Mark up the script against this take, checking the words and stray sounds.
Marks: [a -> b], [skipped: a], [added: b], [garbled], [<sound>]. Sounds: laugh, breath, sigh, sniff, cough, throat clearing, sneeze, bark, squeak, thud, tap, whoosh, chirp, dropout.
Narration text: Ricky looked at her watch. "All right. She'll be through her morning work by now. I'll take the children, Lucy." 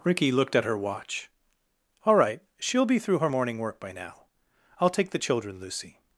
Ricky looked at her watch. "All right. She'll be through her morning work by now. I'll take the children, Lucy."